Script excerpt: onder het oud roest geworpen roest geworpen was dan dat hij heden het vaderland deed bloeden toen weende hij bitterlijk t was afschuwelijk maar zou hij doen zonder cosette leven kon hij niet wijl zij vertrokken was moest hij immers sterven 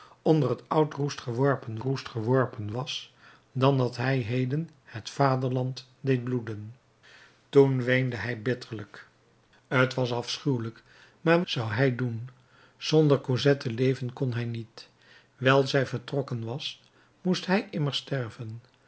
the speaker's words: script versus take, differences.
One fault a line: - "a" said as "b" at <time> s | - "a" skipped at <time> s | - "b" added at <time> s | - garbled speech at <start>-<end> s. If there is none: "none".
none